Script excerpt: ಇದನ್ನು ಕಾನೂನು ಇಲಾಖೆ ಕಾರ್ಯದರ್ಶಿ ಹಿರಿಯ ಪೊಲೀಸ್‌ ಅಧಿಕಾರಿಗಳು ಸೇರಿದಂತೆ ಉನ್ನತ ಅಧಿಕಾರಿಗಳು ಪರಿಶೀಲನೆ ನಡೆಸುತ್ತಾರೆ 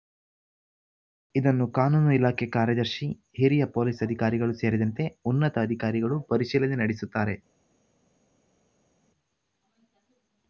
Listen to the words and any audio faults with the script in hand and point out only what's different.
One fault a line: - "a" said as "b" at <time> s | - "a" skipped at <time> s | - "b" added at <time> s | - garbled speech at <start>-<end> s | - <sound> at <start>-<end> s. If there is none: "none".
none